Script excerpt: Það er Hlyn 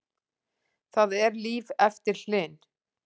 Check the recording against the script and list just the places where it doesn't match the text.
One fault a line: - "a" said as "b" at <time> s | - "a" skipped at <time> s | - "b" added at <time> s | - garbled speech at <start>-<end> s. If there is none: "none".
- "líf eftir" added at 1.4 s